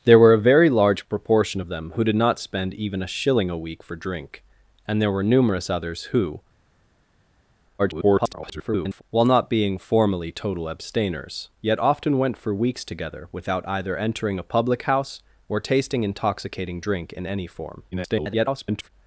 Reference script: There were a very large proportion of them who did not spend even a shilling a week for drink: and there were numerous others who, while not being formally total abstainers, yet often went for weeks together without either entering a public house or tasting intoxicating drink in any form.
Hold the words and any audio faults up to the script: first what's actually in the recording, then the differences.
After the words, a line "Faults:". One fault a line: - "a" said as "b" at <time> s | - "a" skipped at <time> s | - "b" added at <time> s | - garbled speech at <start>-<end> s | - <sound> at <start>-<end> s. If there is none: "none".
There were a very large proportion of them who did not spend even a shilling a week for drink: and there were numerous others who, [garbled] while not being formally total abstainers, yet often went for weeks together without either entering a public house or tasting intoxicating drink in any form. [garbled]
Faults:
- garbled speech at 7.8-9.0 s
- garbled speech at 17.9-18.9 s